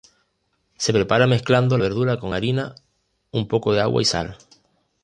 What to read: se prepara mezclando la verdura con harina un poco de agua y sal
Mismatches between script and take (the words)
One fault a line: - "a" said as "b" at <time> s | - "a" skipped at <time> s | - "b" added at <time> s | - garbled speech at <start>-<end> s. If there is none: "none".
- "la" skipped at 1.8 s